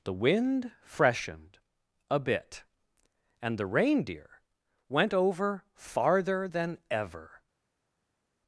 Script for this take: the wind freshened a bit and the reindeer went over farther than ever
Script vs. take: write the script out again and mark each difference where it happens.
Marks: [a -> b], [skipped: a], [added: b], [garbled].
the wind freshened a bit and the reindeer went over farther than ever